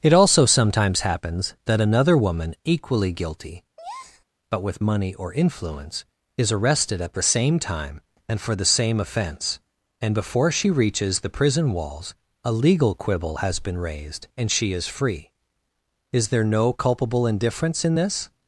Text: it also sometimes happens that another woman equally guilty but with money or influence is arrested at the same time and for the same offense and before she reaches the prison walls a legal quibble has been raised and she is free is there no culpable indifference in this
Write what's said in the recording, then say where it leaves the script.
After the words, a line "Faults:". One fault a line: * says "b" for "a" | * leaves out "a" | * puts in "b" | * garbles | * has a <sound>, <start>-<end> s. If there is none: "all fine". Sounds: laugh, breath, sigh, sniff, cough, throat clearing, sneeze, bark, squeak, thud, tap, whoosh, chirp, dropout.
it also sometimes happens that another woman equally guilty but with money or influence is arrested at the same time and for the same offense and before she reaches the prison walls a legal quibble has been raised and she is free is there no culpable indifference in this
Faults:
* has a breath, 3.8-4.2 s